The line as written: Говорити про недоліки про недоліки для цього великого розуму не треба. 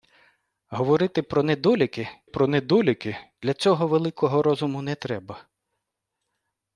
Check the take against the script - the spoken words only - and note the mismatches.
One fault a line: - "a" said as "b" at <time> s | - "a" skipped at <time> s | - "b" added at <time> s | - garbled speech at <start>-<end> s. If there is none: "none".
none